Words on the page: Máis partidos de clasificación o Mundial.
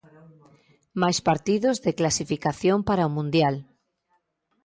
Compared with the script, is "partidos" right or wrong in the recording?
right